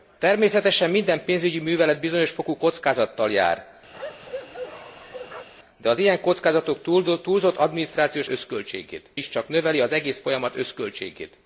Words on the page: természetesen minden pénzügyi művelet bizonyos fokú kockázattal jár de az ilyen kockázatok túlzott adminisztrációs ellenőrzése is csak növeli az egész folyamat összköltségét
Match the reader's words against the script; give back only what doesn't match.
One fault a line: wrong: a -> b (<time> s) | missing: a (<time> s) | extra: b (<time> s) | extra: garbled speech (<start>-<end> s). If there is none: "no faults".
wrong: ellenőrzése -> összköltségét (8.3 s)